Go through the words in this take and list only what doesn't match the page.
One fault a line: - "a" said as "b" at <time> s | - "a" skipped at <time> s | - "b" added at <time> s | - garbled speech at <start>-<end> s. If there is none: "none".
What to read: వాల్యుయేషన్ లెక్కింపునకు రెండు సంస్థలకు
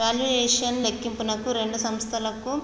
none